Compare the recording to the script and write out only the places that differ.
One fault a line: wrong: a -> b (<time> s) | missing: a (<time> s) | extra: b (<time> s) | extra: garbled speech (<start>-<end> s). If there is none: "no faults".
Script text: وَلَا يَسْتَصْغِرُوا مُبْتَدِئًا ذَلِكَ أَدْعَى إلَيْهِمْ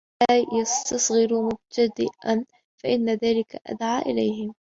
extra: فَإِنَّ (2.8 s)